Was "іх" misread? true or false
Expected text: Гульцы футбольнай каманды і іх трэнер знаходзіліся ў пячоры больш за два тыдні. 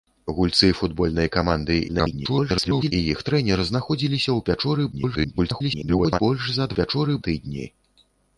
false